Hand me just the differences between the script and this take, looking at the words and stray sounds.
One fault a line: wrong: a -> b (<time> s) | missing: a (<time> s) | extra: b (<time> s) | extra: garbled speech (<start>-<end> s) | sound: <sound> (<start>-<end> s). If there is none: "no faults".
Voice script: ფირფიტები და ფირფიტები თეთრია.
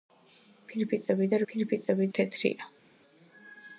no faults